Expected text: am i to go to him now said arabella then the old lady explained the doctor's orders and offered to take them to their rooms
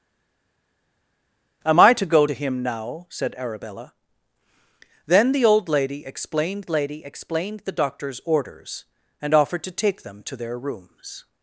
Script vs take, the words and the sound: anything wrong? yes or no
yes